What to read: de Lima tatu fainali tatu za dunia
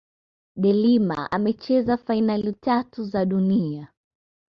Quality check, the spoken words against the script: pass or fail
fail